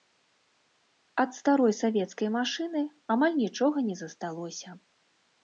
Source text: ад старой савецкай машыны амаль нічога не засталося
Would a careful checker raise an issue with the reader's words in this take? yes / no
no